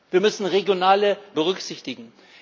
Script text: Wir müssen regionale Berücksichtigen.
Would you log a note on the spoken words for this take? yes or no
no